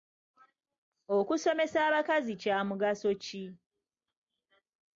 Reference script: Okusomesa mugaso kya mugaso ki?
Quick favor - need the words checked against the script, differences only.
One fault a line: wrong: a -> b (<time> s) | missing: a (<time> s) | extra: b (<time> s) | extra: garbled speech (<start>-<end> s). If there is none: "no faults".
wrong: mugaso -> abakazi (1.9 s)